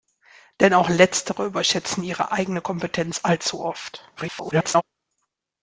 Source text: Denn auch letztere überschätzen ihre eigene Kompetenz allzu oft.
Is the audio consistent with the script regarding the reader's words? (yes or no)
no